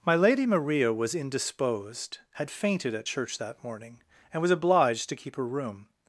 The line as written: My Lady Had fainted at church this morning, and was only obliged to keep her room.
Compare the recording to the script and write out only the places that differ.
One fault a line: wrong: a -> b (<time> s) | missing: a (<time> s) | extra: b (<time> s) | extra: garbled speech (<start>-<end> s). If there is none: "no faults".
extra: Maria was indisposed (0.5 s)
wrong: this -> that (3.4 s)
missing: only (4.5 s)